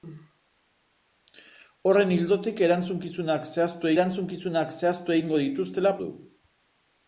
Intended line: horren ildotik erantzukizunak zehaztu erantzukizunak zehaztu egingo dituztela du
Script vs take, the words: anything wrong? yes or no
no